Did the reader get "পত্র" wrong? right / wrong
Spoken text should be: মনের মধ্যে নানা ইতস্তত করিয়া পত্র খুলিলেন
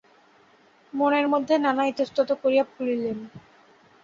wrong